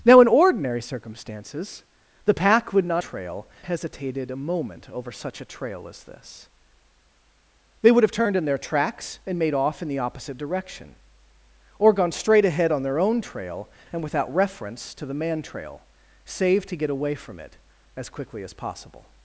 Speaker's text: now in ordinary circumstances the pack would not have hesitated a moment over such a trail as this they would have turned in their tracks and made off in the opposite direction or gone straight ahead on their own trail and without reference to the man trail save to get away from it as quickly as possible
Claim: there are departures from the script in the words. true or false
true